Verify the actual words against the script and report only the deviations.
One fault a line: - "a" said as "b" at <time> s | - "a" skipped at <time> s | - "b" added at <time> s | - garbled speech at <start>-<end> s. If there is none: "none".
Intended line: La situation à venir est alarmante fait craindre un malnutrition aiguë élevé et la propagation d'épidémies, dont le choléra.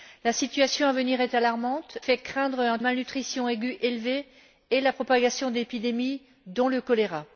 none